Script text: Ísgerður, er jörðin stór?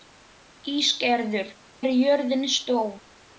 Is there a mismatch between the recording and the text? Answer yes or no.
no